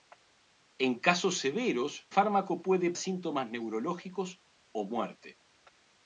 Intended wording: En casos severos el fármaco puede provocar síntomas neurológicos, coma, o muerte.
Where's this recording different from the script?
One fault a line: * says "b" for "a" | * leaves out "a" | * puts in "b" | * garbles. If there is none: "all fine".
* leaves out "el"
* leaves out "provocar"
* leaves out "coma"